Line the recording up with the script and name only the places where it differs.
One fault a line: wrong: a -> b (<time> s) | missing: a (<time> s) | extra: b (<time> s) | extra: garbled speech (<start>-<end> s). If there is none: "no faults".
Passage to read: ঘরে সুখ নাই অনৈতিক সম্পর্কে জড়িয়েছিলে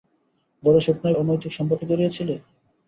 no faults